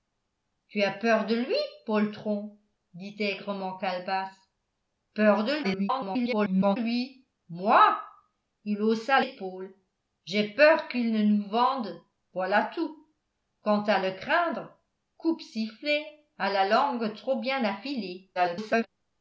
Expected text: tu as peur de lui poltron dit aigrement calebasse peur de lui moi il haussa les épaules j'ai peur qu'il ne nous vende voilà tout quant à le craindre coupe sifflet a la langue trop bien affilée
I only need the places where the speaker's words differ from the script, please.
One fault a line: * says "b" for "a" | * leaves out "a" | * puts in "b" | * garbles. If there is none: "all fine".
* garbles
* leaves out "les"
* garbles